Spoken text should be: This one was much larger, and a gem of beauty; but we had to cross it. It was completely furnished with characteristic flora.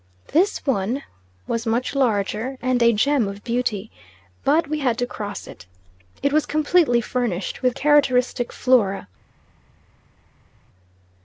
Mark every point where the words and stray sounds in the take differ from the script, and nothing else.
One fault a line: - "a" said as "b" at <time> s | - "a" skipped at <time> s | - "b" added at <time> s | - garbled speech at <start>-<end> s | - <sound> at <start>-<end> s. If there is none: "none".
none